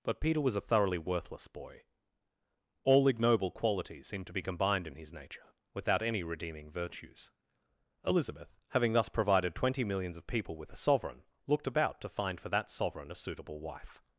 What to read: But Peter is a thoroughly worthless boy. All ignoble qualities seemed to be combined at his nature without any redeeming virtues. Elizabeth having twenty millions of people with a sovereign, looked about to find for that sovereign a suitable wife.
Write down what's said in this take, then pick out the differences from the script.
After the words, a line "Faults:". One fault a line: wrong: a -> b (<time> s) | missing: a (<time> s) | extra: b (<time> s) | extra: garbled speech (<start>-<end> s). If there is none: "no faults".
But Peter was a thoroughly worthless boy. All ignoble qualities seemed to be combined in his nature without any redeeming virtues. Elizabeth having thus provided twenty millions of people with a sovereign, looked about to find for that sovereign a suitable wife.
Faults:
wrong: is -> was (0.4 s)
wrong: at -> in (4.8 s)
extra: thus provided (8.9 s)